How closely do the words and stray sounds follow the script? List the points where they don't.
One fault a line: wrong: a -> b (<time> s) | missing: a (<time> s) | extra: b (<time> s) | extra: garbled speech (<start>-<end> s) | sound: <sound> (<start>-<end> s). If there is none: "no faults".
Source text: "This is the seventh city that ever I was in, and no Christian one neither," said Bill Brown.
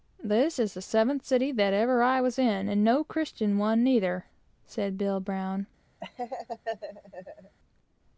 sound: laugh (6.0-7.6 s)